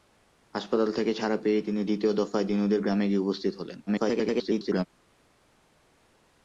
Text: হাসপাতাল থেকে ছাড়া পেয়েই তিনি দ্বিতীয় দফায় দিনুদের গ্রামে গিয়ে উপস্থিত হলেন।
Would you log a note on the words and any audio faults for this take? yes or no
yes